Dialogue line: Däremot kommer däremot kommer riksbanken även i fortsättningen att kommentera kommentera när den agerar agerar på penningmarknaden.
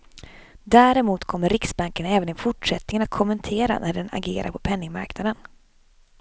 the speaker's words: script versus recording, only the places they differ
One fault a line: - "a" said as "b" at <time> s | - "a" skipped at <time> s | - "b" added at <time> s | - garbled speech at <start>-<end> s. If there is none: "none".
- "däremot kommer" skipped at 1.5 s
- "kommentera" skipped at 3.8 s
- "agerar" skipped at 4.5 s